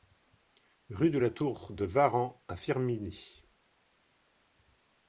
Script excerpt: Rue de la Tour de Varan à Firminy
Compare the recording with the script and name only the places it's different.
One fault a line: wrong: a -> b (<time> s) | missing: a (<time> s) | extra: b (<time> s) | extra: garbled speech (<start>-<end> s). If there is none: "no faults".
no faults